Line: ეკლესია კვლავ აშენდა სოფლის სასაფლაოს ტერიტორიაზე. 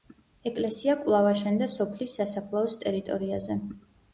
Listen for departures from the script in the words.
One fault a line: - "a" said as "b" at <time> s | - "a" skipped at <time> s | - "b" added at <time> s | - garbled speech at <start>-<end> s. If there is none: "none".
none